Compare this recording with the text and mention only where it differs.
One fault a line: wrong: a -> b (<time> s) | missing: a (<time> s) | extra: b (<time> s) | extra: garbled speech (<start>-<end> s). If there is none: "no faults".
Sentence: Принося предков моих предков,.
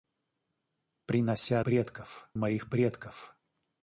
no faults